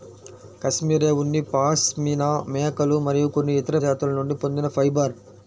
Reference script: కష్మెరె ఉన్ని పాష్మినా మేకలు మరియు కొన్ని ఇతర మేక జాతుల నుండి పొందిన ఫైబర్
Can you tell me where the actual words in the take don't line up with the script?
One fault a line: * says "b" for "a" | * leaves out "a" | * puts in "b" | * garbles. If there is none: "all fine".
* leaves out "మేక"